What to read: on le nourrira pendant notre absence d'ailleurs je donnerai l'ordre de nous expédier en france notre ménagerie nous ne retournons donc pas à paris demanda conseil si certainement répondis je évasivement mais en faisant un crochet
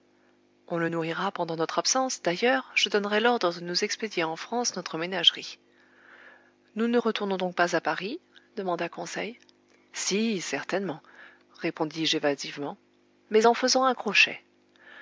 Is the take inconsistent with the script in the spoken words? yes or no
no